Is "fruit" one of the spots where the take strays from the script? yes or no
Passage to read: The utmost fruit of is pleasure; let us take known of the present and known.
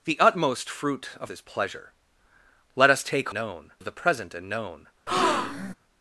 no